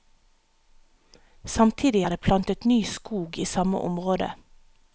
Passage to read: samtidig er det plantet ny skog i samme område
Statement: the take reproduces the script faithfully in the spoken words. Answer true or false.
true